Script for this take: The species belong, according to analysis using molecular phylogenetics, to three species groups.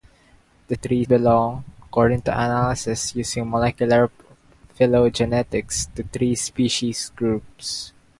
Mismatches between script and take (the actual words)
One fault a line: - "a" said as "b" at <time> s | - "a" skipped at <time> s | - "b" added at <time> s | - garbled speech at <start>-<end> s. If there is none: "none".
- "species" said as "three" at 0.7 s